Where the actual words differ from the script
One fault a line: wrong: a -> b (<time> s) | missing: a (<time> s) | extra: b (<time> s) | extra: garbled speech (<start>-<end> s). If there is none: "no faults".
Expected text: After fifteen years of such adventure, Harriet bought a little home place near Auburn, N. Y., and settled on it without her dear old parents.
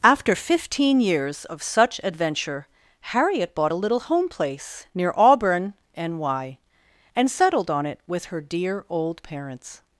wrong: without -> with (8.1 s)